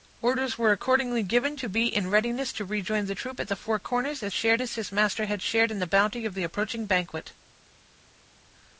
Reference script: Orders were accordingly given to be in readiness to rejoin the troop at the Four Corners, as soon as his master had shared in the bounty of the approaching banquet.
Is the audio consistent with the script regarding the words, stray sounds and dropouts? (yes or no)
no